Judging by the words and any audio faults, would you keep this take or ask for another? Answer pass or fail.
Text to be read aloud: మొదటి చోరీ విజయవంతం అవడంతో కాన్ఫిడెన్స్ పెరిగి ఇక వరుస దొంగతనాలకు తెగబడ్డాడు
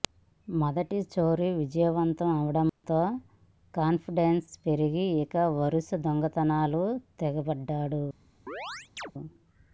fail